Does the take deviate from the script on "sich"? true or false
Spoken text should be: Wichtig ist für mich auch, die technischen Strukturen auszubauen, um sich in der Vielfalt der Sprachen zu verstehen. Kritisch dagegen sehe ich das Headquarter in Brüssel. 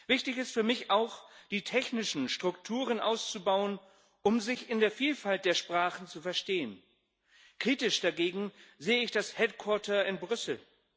false